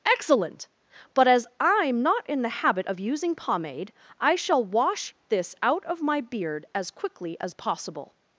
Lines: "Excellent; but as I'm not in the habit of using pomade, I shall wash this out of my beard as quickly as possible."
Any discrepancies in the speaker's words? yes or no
no